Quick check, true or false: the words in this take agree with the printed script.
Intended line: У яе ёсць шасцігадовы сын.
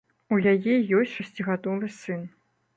true